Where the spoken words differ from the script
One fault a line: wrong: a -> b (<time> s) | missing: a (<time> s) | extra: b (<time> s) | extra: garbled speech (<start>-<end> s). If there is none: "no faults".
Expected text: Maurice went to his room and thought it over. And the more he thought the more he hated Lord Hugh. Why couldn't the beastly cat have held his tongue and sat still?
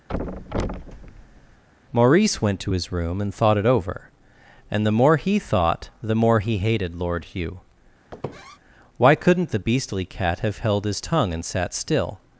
no faults